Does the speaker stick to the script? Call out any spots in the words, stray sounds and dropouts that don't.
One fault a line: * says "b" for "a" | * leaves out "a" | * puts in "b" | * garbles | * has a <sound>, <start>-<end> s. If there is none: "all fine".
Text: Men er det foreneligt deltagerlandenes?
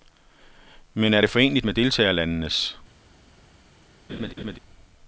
* puts in "med"
* has a laugh, 4.1-4.6 s